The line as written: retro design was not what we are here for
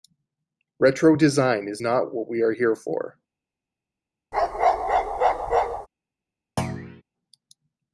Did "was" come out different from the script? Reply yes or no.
yes